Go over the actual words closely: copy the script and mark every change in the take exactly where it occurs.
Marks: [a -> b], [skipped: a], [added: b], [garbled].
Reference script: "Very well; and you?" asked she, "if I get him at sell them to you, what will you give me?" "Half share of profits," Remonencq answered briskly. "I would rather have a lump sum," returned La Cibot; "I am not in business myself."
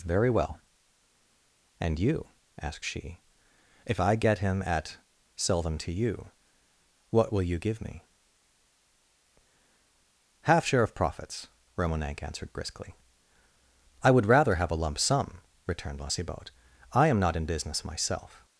"Very well; and you?" asked she, "if I get him at sell them to you, what will you give me?" "Half share of profits," Remonencq answered briskly. "I would rather have a lump sum," returned La Cibot; "I am not in business myself."